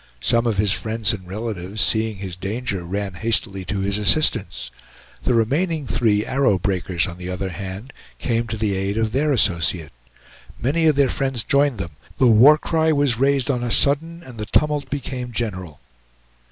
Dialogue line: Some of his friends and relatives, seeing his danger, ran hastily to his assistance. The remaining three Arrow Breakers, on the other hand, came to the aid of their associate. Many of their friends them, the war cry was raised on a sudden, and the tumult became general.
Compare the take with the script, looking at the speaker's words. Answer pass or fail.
fail